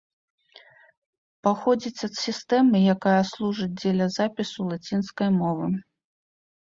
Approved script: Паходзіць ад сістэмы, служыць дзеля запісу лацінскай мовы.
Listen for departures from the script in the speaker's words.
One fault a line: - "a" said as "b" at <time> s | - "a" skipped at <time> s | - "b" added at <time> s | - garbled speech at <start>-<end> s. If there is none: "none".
- "якая" added at 3.0 s